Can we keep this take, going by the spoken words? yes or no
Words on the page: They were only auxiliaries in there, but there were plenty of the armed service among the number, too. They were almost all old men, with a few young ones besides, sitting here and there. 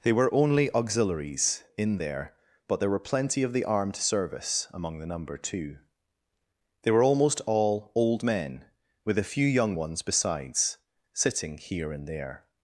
yes